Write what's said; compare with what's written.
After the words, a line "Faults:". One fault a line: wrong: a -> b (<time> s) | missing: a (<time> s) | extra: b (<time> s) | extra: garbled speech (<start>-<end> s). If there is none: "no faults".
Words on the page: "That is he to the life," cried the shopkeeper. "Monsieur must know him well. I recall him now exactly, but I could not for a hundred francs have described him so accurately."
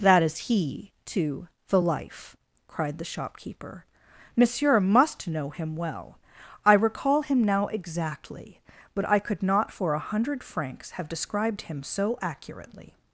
"That is he to the life," cried the shopkeeper. "Monsieur must know him well. I recall him now exactly, but I could not for a hundred francs have described him so accurately."
Faults:
no faults